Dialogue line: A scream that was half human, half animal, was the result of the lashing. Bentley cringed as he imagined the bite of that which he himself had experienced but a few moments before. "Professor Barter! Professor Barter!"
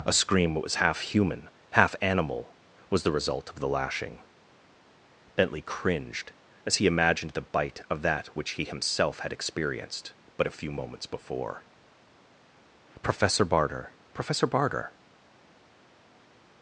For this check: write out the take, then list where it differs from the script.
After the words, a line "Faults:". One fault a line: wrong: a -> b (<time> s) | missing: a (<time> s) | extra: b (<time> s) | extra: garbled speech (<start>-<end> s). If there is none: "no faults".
A scream that was half human, half animal, was the result of the lashing. Bentley cringed as he imagined the bite of that which he himself had experienced but a few moments before. "Professor Barter! Professor Barter!"
Faults:
no faults